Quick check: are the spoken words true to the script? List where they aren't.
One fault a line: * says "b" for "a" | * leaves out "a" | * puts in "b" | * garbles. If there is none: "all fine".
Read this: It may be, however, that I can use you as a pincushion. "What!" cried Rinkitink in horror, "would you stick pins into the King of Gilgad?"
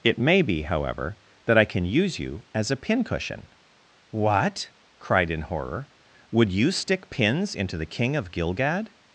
* leaves out "Rinkitink"